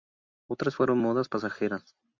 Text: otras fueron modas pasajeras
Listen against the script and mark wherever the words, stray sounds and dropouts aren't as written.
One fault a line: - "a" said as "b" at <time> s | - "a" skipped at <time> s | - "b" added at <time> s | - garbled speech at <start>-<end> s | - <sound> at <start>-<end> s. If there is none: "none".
none